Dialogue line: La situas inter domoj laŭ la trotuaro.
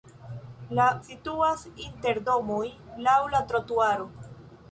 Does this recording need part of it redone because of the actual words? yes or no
no